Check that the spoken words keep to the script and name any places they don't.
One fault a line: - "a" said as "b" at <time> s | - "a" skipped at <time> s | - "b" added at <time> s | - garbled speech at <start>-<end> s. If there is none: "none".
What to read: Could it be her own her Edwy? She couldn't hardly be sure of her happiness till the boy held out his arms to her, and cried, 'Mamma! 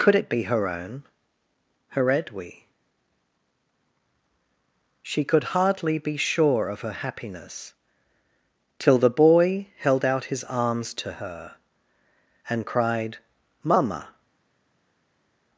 - "couldn't" said as "could" at 5.2 s